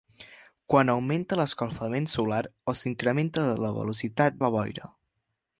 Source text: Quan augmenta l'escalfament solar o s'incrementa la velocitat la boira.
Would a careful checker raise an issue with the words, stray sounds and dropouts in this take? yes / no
no